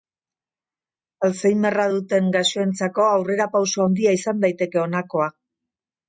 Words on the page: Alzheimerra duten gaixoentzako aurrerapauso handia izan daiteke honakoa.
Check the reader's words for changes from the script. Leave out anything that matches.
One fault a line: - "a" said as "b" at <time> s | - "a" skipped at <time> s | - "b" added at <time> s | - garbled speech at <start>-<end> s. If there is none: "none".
none